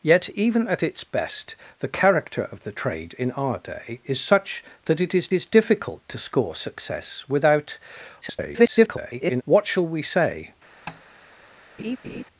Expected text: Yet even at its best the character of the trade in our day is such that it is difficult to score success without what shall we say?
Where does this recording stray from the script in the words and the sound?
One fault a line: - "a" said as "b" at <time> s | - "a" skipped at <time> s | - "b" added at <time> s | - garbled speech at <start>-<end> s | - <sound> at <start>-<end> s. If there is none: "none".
- "is" added at 5.3 s
- garbled speech at 8.2-9.4 s
- tap at 10.9-11.0 s
- laugh at 11.8-12.2 s